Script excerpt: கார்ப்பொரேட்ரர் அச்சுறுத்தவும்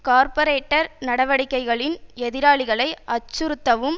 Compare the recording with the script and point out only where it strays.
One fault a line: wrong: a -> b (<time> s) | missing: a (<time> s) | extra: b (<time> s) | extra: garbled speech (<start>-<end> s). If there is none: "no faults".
extra: நடவடிக்கைகளின் எதிராளிகளை (1.0 s)